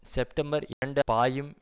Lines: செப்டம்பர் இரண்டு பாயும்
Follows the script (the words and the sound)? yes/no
no